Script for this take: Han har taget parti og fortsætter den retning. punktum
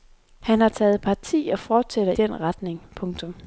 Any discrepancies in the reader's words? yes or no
no